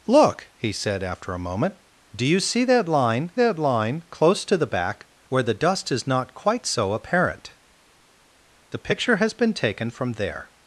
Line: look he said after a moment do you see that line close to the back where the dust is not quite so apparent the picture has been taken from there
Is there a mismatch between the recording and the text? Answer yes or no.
yes